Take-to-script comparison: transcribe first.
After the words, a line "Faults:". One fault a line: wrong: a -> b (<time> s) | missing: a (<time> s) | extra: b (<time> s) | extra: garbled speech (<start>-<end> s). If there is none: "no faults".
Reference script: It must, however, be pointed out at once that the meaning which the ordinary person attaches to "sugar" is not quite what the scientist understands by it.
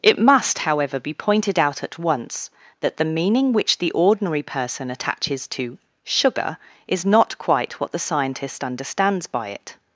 It must, however, be pointed out at once that the meaning which the ordinary person attaches to "sugar" is not quite what the scientist understands by it.
Faults:
no faults